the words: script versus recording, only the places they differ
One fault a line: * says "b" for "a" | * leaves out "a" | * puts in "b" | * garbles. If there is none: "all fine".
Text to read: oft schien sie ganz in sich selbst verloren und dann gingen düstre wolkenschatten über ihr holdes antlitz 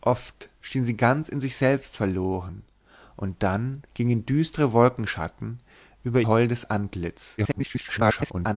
* leaves out "ihr"
* garbles